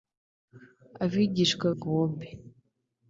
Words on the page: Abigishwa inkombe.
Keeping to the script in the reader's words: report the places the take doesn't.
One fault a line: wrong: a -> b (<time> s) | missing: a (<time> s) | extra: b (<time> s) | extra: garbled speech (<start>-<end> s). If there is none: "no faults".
no faults